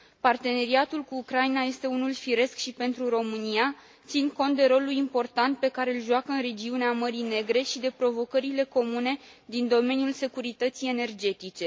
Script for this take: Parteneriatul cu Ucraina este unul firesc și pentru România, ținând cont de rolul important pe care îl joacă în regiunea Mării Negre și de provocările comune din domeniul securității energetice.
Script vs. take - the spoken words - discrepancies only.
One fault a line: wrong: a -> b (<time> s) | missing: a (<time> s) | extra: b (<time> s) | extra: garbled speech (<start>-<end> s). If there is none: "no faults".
no faults